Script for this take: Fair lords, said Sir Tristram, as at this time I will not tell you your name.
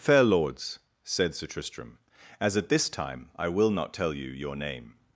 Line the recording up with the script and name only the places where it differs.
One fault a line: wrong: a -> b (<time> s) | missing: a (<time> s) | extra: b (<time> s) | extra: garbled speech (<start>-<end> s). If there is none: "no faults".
no faults